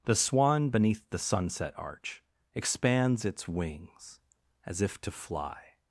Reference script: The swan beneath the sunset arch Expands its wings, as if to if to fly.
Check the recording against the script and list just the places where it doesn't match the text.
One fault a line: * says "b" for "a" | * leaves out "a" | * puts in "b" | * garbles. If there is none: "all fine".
* leaves out "if to"